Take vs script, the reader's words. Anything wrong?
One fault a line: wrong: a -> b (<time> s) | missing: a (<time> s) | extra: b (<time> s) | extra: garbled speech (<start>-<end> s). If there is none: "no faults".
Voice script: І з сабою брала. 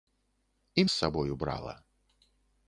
no faults